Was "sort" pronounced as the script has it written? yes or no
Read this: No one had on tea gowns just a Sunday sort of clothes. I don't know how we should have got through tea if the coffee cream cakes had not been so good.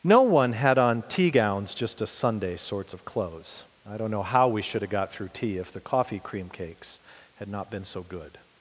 no